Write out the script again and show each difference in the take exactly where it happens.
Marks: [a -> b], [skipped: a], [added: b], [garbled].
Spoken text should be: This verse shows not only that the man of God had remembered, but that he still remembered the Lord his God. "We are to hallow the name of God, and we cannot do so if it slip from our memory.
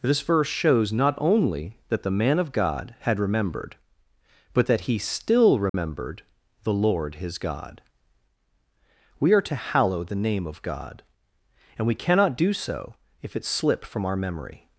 This verse shows not only that the man of God had remembered, but that he still remembered the Lord his God. "We are to hallow the name of God, and we cannot do so if it slip from our memory.